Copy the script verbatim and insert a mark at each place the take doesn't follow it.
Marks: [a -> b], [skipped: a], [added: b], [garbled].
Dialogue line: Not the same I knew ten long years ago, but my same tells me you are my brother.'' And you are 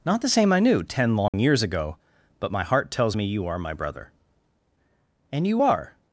Not the same I knew ten long years ago, but my [same -> heart] tells me you are my brother.'' And you are